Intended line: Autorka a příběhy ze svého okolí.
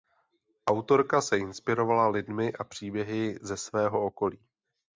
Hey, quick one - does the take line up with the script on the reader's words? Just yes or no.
no